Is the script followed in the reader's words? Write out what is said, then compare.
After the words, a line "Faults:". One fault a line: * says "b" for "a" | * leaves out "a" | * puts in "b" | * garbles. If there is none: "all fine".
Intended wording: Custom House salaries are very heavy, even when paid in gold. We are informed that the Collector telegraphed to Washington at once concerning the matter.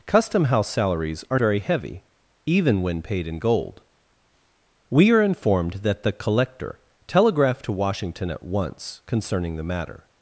Custom House salaries are very heavy, even when paid in gold. We are informed that the Collector telegraphed to Washington at once concerning the matter.
Faults:
all fine